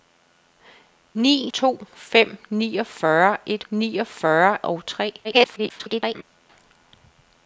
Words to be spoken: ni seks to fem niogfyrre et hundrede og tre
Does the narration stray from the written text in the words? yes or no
yes